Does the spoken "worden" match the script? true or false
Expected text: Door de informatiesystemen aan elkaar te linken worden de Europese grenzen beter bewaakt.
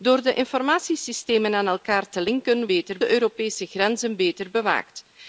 false